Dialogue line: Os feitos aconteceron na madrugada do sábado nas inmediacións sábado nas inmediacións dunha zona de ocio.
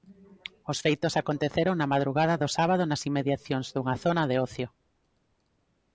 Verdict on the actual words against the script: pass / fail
fail